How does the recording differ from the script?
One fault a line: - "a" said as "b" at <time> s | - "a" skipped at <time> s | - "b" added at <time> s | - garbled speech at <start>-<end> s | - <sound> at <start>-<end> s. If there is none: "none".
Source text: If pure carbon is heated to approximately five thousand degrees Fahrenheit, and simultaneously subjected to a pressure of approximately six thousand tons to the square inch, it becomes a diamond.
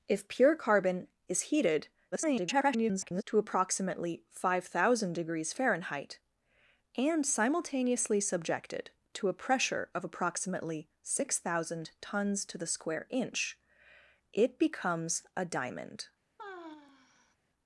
- garbled speech at 2.1-3.2 s
- sigh at 16.4-17.4 s